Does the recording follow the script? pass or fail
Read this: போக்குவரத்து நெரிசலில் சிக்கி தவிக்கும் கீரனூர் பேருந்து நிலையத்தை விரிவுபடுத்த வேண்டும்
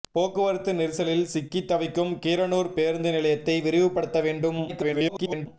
fail